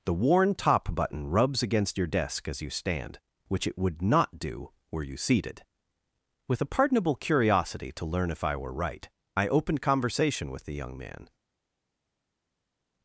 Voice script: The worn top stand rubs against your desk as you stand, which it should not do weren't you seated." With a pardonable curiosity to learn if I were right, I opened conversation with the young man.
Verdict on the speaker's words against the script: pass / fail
fail